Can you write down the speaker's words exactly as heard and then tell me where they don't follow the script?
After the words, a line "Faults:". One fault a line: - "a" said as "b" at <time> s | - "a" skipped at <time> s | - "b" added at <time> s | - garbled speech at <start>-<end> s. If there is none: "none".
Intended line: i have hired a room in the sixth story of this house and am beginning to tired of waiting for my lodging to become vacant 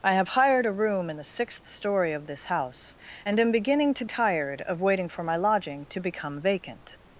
i have hired a room in the sixth story of this house and am beginning to tired of waiting for my lodging to become vacant
Faults:
none